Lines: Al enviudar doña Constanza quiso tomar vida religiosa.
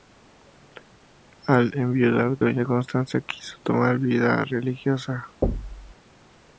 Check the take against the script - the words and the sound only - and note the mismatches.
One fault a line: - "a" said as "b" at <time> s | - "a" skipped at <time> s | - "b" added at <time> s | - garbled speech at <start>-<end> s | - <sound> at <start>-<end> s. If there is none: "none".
- thud at 5.4-6.0 s